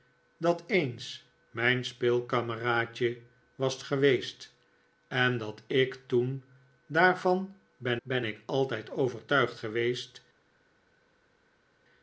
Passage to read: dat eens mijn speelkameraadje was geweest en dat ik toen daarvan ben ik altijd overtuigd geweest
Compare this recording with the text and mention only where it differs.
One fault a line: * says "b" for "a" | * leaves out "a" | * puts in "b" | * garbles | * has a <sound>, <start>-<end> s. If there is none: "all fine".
* puts in "ben"